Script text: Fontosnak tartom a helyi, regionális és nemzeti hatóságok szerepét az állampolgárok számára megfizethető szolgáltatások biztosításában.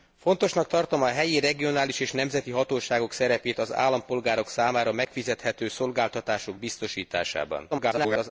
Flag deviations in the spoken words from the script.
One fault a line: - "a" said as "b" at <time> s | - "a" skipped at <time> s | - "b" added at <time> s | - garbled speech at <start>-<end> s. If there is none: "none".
- garbled speech at 7.7-8.3 s